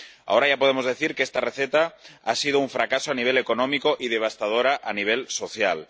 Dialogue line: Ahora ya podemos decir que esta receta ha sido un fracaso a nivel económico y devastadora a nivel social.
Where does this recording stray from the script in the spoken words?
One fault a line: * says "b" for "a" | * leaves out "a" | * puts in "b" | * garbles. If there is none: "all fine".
all fine